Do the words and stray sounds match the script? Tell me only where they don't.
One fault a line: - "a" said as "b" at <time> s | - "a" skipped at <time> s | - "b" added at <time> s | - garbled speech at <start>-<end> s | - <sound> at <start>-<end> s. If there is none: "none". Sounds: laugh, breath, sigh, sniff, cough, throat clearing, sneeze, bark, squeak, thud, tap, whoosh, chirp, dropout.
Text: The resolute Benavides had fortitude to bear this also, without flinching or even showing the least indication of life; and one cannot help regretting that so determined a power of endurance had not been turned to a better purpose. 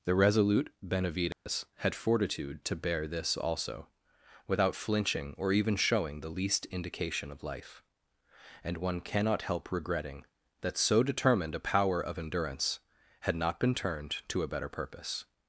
- dropout at 1.3-1.5 s